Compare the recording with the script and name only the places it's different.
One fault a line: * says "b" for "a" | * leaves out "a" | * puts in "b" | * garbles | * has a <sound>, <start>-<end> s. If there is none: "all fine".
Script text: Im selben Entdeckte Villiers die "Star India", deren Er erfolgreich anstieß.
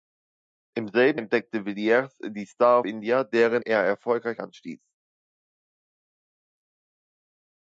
all fine